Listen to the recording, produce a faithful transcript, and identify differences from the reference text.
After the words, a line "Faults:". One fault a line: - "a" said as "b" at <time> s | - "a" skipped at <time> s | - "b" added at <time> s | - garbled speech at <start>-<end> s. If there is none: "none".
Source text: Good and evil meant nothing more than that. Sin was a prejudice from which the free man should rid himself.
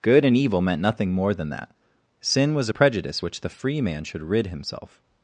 Good and evil meant nothing more than that. Sin was a prejudice which the free man should rid himself.
Faults:
- "from" skipped at 3.2 s